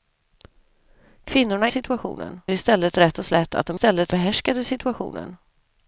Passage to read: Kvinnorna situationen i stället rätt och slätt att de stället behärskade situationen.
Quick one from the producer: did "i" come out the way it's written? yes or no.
yes